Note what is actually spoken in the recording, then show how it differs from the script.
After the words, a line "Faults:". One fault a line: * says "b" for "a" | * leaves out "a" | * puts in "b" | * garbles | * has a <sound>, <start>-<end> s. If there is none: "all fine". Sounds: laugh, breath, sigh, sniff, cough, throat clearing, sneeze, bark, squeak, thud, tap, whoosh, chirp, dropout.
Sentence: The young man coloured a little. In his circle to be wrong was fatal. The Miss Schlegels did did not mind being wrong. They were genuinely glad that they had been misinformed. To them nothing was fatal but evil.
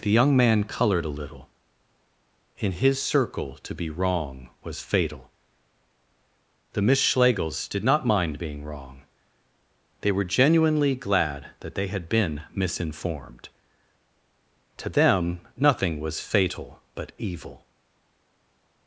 The young man coloured a little. In his circle to be wrong was fatal. The Miss Schlegels did not mind being wrong. They were genuinely glad that they had been misinformed. To them nothing was fatal but evil.
Faults:
* leaves out "did"